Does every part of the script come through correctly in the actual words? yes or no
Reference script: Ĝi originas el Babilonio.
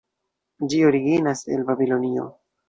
yes